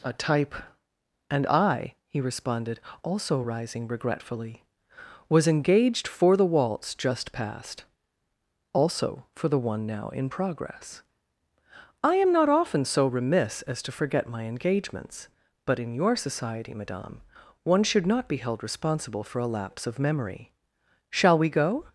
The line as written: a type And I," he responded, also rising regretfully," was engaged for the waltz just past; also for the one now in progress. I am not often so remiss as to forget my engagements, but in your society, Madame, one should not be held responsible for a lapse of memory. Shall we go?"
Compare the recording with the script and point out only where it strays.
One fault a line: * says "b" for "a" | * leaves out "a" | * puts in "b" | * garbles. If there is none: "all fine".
all fine